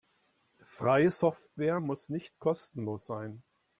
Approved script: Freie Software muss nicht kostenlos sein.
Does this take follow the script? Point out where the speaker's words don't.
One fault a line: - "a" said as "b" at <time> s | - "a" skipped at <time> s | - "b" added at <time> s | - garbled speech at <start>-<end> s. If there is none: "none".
none